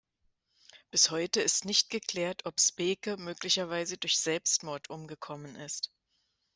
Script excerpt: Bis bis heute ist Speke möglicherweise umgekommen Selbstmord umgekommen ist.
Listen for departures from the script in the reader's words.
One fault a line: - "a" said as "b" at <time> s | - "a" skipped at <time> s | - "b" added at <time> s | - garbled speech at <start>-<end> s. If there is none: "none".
- "bis" skipped at 1.1 s
- "nicht geklärt ob" added at 1.6 s
- "umgekommen" said as "durch" at 4.0 s